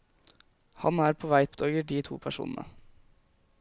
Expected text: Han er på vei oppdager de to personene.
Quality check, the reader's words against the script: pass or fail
pass